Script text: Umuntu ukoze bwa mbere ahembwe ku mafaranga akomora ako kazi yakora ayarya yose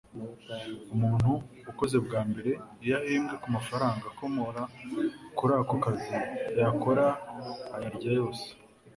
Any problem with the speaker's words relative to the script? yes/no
yes